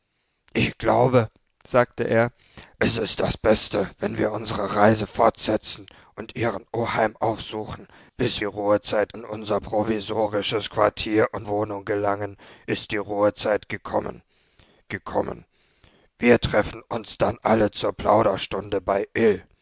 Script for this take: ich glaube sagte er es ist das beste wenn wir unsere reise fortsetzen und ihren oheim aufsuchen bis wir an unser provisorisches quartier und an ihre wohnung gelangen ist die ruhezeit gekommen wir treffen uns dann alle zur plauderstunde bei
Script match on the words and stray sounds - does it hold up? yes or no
no